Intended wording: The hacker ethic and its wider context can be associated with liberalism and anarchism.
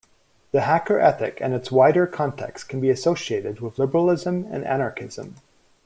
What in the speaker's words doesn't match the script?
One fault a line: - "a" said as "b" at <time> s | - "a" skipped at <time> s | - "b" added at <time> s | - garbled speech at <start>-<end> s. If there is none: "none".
none